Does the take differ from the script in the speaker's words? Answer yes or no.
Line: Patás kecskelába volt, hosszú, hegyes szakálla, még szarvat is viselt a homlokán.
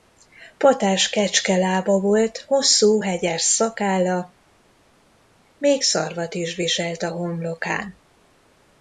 no